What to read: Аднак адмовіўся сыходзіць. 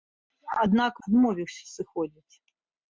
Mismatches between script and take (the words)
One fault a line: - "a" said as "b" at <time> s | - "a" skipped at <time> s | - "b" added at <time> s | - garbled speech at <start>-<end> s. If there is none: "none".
none